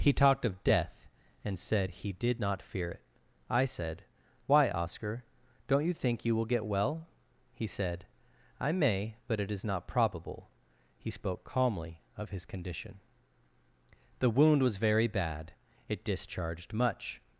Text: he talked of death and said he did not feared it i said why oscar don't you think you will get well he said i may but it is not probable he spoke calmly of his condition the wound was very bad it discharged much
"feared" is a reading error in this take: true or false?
true